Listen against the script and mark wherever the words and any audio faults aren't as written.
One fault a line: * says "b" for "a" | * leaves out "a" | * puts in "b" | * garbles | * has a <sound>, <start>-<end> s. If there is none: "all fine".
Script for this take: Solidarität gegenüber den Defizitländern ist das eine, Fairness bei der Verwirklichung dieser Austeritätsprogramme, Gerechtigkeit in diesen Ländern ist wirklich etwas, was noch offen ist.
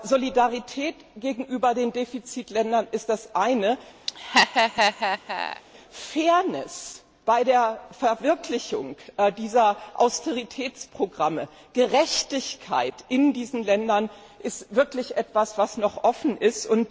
* has a laugh, 4.1-5.6 s